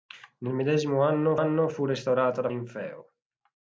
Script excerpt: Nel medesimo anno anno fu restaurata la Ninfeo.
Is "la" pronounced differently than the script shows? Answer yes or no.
no